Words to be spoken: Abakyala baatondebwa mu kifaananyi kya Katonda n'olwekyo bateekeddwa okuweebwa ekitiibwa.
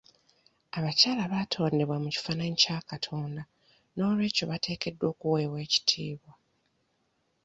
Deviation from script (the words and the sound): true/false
false